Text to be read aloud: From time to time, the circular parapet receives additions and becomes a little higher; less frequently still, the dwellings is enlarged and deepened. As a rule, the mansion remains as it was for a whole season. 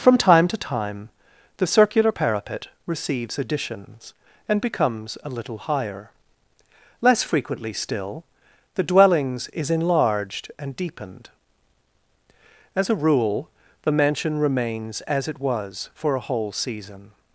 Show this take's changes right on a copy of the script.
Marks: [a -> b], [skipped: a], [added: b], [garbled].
From time to time, the circular parapet receives additions and becomes a little higher; less frequently still, the dwellings is enlarged and deepened. As a rule, the mansion remains as it was for a whole season.